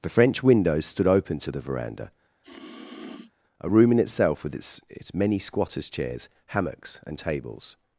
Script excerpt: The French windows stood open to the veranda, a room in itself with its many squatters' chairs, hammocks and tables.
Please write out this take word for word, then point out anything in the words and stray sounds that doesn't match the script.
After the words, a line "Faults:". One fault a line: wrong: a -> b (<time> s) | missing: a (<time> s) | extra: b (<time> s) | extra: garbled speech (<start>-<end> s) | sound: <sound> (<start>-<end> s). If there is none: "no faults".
The French windows stood open to the veranda, a room in itself with its its many squatters' chairs, hammocks and tables.
Faults:
sound: sniff (2.4-3.3 s)
extra: its (4.9 s)